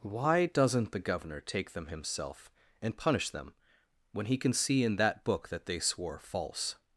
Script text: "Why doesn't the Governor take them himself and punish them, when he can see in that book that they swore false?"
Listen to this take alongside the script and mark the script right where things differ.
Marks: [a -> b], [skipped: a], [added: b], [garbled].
"Why doesn't the Governor take them himself and punish them, when he can see in that book that they swore false?"